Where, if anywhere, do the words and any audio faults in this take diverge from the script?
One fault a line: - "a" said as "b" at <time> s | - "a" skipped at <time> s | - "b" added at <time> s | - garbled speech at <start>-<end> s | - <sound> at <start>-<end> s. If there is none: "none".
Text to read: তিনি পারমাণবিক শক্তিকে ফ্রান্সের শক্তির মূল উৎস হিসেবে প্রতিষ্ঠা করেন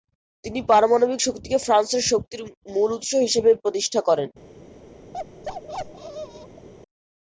- bark at 5.1-6.7 s